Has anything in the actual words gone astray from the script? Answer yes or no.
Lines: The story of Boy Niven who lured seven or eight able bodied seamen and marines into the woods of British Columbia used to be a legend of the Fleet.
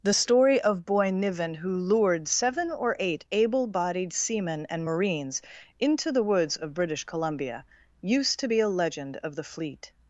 no